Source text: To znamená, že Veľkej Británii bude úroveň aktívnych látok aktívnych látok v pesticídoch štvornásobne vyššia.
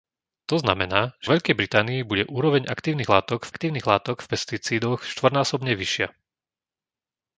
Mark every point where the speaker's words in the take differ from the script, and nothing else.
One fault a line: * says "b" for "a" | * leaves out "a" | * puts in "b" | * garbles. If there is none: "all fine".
all fine